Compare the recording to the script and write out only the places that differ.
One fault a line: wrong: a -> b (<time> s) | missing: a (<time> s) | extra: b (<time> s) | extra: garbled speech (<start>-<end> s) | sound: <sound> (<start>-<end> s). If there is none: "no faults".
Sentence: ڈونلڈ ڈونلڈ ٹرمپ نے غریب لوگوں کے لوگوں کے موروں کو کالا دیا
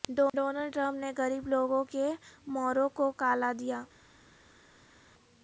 missing: ڈونلڈ (0.7 s)
missing: لوگوں کے (2.1 s)